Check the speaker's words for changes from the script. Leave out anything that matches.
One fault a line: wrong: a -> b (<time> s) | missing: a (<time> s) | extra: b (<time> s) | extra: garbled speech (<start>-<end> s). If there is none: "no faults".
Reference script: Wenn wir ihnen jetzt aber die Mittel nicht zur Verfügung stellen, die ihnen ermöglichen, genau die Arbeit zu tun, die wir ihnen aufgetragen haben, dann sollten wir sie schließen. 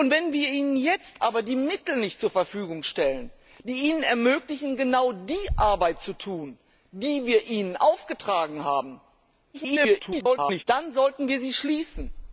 extra: garbled speech (9.5-10.6 s)